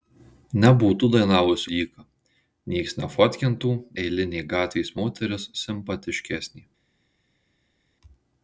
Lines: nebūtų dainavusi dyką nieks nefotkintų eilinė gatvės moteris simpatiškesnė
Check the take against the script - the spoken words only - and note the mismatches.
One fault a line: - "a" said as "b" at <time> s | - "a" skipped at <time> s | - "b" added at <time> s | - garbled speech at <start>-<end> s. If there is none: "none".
none